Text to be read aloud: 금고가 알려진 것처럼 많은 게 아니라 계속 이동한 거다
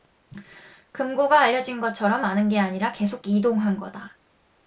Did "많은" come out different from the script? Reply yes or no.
no